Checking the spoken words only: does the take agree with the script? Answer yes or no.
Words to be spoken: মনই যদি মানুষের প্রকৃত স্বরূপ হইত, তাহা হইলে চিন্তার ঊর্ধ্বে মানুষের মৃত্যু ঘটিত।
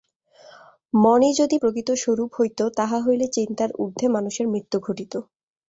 no